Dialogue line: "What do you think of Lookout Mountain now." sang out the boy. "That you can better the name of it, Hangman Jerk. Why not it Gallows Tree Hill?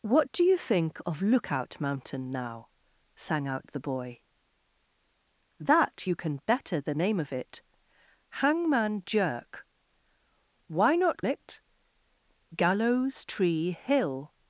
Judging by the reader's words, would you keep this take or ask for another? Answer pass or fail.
pass